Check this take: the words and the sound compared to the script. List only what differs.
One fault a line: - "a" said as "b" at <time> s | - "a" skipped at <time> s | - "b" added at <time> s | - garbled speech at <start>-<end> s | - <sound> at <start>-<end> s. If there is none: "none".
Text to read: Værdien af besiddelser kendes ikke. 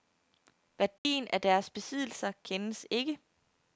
- dropout at 1.0-1.0 s
- "deres" added at 1.4 s